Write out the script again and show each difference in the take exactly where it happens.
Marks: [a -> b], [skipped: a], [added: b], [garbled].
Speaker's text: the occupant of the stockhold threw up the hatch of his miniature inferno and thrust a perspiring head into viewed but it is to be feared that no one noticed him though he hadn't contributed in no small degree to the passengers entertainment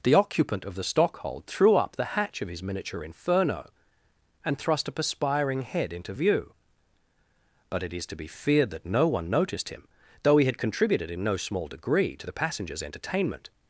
the occupant of the stockhold threw up the hatch of his miniature inferno and thrust a perspiring head into [viewed -> view] but it is to be feared that no one noticed him though he [hadn't -> had] contributed in no small degree to the passengers entertainment